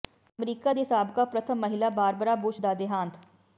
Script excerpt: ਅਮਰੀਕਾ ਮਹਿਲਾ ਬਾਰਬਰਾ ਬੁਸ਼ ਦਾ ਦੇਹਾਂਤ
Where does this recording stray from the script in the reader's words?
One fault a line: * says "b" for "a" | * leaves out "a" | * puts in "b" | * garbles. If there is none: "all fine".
* puts in "ਦੀ ਸਾਬਕਾ ਪ੍ਰਥਮ"